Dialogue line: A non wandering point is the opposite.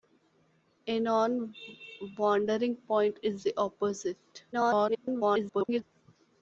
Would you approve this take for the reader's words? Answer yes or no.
no